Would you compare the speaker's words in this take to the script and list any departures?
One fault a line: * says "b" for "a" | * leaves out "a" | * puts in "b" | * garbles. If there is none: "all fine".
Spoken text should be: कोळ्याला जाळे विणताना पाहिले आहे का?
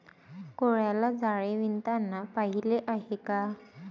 all fine